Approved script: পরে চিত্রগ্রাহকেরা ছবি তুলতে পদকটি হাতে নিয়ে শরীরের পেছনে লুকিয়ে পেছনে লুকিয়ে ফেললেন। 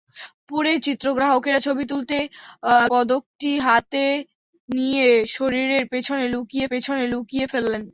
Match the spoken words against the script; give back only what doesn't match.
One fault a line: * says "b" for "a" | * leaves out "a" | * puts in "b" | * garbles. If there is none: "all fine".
all fine